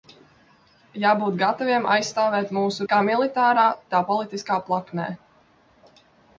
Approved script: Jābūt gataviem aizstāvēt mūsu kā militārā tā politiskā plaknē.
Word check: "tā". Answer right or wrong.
right